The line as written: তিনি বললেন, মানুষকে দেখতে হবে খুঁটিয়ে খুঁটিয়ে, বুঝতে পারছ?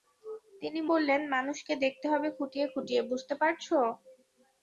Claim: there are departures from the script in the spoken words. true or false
false